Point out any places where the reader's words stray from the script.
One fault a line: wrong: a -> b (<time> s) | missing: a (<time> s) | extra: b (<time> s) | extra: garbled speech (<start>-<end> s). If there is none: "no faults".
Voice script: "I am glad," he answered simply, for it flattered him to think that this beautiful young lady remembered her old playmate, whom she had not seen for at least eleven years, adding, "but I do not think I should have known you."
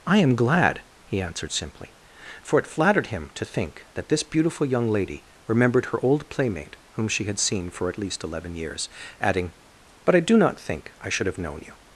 missing: not (7.4 s)